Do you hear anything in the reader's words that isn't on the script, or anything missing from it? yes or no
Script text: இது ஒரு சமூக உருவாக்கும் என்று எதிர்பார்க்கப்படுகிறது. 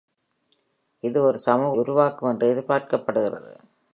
no